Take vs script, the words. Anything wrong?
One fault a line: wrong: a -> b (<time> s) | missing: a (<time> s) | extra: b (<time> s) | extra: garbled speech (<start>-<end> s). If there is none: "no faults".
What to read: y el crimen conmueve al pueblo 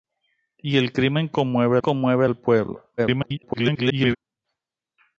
extra: conmueve (1.8 s)
extra: garbled speech (3.0-4.2 s)